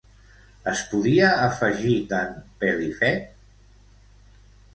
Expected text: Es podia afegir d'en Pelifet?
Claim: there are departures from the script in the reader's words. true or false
false